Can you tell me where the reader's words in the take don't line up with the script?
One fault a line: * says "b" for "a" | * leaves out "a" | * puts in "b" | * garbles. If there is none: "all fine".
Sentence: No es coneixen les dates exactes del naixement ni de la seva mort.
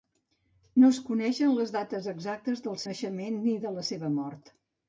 all fine